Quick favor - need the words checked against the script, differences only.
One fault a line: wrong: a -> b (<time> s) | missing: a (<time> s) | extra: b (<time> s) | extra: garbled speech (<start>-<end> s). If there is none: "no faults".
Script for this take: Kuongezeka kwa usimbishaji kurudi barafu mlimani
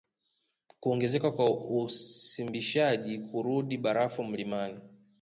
no faults